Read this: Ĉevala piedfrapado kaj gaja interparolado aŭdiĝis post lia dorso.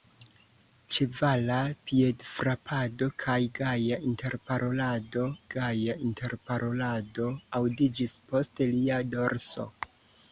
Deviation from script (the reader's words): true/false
true